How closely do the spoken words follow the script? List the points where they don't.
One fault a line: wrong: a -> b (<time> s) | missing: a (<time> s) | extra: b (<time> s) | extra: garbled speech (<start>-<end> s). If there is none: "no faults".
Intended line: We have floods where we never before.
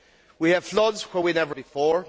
no faults